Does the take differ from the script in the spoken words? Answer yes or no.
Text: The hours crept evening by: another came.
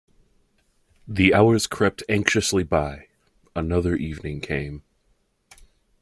yes